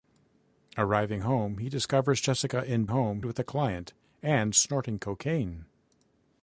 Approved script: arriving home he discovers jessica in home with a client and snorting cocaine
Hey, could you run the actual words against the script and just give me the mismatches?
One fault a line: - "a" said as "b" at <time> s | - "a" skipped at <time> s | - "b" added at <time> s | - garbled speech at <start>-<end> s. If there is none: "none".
none